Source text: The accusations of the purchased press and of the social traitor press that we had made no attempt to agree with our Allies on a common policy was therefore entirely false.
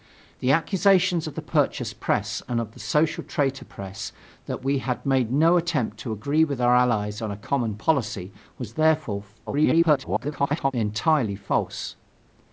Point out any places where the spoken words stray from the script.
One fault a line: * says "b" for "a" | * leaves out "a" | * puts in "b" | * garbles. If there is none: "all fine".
* garbles